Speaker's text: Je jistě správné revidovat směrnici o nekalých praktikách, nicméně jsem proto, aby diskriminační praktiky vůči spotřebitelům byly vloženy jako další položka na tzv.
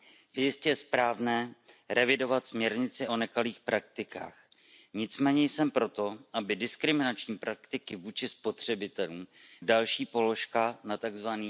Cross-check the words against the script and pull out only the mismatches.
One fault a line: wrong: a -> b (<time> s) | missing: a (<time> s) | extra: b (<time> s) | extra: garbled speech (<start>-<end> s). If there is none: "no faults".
missing: byly vloženy jako (9.3 s)